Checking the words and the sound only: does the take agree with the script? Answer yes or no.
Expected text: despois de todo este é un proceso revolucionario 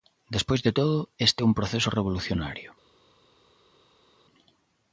yes